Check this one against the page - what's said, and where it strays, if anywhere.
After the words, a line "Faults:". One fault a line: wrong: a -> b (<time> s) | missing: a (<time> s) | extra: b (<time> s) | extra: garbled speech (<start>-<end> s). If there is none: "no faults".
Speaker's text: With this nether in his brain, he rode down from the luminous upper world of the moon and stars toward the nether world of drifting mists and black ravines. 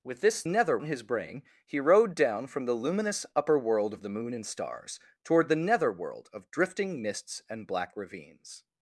With this nether in his brain, he rode down from the luminous upper world of the moon and stars toward the nether world of drifting mists and black ravines.
Faults:
no faults